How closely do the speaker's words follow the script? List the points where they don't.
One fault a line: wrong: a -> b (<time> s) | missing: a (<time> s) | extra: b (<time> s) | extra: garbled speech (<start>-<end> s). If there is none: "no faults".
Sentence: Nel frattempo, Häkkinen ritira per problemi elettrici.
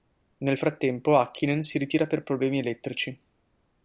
extra: si (1.6 s)